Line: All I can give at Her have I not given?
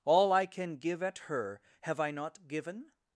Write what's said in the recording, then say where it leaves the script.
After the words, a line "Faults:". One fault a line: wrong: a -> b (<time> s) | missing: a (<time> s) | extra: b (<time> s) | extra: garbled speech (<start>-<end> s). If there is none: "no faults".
All I can give at Her have I not given?
Faults:
no faults